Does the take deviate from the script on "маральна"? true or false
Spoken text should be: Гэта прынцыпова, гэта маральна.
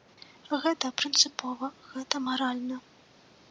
false